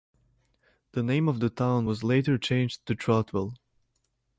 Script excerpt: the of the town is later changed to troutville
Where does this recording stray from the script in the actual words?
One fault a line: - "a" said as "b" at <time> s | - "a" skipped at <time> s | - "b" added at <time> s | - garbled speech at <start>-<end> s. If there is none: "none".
- "name" added at 1.0 s
- "is" said as "was" at 1.8 s